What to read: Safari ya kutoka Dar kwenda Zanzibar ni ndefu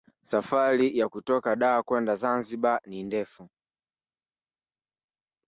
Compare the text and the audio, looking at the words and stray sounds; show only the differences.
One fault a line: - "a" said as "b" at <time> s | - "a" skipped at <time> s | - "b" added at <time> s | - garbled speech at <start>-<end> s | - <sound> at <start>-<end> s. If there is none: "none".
none